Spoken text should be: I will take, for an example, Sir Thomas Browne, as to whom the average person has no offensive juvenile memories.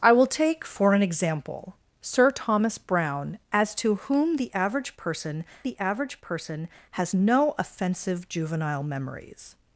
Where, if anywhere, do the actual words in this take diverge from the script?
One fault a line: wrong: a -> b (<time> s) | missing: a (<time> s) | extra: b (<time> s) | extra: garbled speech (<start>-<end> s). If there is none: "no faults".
extra: the average person (5.6 s)